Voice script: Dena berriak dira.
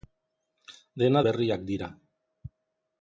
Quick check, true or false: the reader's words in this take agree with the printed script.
true